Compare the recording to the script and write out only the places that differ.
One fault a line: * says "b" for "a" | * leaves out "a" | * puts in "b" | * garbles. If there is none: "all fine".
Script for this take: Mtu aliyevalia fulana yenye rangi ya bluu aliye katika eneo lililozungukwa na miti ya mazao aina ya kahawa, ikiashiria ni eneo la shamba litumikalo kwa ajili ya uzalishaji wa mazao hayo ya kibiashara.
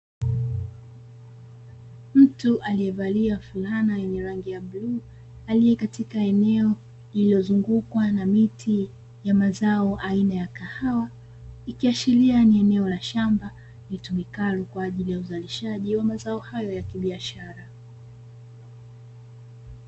all fine